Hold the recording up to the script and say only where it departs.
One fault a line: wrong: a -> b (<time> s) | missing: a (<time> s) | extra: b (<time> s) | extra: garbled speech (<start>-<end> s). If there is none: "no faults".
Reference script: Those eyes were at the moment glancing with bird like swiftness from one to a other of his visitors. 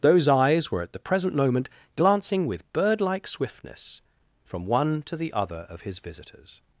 extra: present (1.0 s)
wrong: a -> the (5.2 s)